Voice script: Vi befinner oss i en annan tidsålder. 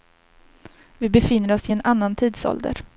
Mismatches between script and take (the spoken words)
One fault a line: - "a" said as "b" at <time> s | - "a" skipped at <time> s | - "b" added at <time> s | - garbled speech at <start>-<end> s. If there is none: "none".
none